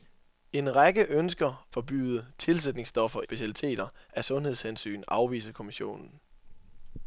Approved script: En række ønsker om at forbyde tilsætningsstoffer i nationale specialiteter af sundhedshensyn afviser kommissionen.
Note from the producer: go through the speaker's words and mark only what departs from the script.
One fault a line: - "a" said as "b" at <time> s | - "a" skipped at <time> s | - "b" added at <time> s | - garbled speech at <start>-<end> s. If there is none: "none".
- "om at" skipped at 1.7 s
- "i nationale" skipped at 3.2 s